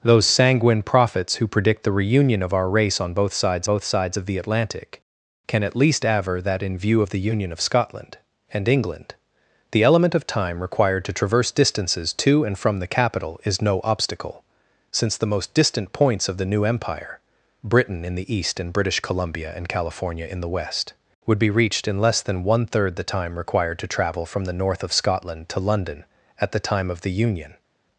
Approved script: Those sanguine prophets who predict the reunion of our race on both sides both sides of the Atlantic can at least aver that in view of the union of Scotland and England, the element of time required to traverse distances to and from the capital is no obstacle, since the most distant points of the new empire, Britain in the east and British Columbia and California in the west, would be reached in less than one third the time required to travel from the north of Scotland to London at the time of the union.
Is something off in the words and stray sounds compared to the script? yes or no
no